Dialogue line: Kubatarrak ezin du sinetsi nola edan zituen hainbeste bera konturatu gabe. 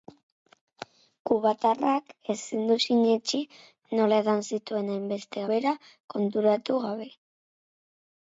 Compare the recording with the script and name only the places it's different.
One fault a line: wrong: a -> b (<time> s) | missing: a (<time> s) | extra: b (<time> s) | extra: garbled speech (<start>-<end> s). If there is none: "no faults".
no faults